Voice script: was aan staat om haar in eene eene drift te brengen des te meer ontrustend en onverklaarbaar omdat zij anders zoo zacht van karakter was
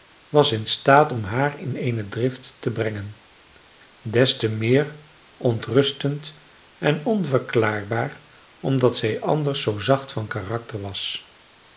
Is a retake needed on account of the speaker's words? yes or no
yes